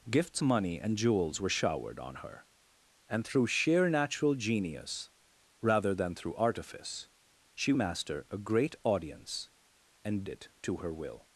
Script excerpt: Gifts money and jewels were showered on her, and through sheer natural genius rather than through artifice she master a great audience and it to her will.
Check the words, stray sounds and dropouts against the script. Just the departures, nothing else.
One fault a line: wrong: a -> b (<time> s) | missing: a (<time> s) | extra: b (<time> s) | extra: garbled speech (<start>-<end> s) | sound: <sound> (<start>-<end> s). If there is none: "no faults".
no faults